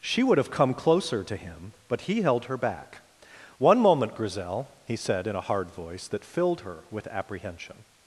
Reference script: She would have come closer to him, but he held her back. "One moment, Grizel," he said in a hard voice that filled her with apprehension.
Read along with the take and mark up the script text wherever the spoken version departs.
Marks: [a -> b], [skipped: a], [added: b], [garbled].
She would have come closer to him, but he held her back. "One moment, Grizel," he said in a hard voice that filled her with apprehension.